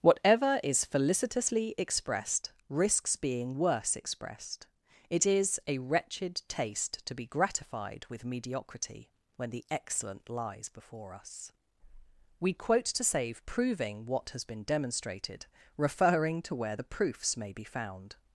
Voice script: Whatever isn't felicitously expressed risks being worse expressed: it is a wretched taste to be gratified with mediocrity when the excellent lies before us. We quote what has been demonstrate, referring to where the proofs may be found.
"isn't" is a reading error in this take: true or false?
true